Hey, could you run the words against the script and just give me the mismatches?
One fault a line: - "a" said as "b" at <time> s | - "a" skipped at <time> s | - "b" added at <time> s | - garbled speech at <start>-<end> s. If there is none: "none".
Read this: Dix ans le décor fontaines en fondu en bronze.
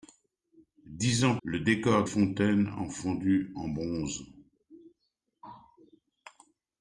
none